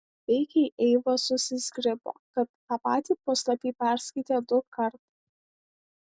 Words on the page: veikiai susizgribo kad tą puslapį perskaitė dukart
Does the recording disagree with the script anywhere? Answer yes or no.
yes